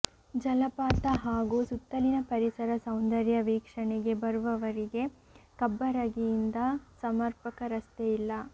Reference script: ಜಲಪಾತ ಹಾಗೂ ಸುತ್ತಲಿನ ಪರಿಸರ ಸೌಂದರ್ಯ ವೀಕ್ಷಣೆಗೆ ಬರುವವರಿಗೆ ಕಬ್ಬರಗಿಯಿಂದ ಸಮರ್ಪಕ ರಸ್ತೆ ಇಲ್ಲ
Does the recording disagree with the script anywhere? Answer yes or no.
no